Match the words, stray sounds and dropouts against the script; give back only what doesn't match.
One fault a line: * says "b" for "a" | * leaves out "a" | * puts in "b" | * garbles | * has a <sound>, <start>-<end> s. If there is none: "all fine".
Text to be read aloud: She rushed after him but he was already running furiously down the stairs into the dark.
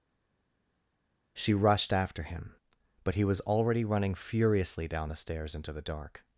all fine